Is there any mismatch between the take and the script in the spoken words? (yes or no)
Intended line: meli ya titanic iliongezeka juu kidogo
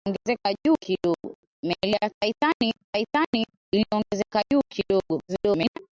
yes